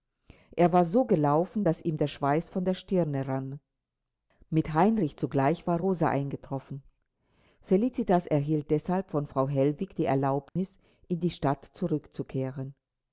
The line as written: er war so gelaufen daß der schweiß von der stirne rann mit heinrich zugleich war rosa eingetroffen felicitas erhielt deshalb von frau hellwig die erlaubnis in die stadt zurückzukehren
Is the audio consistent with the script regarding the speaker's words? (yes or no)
no